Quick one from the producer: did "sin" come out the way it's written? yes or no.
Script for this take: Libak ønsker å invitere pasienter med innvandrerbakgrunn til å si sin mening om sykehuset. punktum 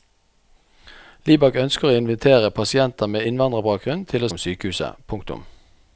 no